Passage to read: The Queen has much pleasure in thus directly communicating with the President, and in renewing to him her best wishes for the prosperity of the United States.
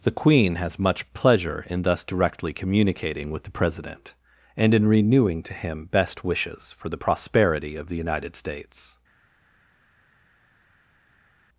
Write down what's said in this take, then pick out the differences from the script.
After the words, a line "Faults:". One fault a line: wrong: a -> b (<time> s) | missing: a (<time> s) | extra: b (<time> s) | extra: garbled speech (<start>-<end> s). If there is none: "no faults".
The Queen has much pleasure in thus directly communicating with the President, and in renewing to him best wishes for the prosperity of the United States.
Faults:
missing: her (5.8 s)